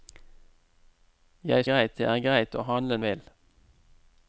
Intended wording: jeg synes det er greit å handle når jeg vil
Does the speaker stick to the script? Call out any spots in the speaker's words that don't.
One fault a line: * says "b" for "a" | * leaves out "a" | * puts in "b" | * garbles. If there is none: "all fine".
* says "greit" for "synes"
* leaves out "når jeg"